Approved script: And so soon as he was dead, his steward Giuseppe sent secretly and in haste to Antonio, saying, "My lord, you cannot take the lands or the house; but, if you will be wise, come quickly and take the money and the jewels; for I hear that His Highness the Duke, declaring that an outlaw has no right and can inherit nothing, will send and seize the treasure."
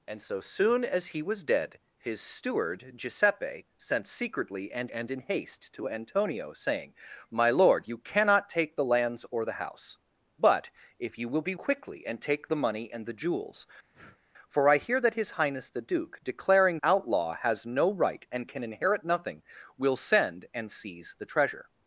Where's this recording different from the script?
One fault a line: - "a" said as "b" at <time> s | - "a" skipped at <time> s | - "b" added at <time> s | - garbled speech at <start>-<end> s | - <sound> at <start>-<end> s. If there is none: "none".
- "and" added at 4.9 s
- "wise come" skipped at 11.5 s
- breath at 13.9-14.2 s
- "that an" skipped at 16.8 s